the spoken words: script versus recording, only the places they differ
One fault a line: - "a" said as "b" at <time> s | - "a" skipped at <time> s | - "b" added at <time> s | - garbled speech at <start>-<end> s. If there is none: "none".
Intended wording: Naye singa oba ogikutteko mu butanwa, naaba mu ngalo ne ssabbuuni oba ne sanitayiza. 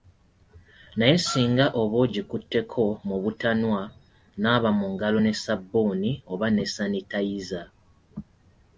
none